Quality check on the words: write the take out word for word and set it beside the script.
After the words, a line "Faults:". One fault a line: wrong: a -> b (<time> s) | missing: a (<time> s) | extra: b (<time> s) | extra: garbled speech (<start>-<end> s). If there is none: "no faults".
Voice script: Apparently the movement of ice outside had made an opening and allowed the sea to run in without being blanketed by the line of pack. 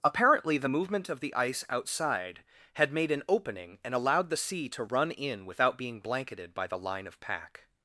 Apparently the movement of the ice outside had made an opening and allowed the sea to run in without being blanketed by the line of pack.
Faults:
extra: the (1.2 s)